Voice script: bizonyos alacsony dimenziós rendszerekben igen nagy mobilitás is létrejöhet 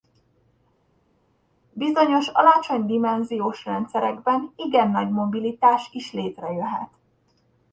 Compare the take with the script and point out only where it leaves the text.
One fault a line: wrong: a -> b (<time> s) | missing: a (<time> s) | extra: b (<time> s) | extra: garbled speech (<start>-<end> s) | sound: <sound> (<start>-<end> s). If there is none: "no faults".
no faults